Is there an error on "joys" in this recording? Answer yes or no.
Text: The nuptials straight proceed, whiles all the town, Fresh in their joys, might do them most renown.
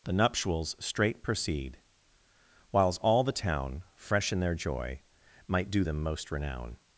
yes